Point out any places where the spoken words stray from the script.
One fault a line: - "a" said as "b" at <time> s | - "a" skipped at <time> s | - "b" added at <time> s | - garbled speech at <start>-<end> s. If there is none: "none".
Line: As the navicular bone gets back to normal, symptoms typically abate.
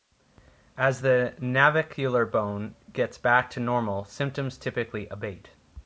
none